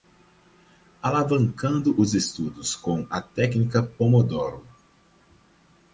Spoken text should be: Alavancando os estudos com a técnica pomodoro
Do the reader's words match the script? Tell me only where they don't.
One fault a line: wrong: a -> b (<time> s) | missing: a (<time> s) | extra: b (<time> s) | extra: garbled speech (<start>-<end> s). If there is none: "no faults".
no faults